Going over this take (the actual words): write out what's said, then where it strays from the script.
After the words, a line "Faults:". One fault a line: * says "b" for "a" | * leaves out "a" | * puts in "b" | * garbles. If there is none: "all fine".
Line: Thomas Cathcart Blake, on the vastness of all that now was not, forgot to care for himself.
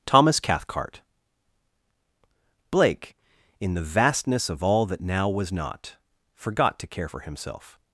Thomas Cathcart Blake, in the vastness of all that now was not, forgot to care for himself.
Faults:
* says "in" for "on"